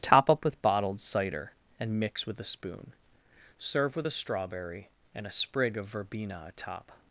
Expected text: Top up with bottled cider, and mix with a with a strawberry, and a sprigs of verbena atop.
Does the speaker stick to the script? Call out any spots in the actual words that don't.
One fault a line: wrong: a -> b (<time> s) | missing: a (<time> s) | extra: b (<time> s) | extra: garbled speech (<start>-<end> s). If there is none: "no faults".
extra: spoon Serve (2.4 s)
wrong: sprigs -> sprig (5.3 s)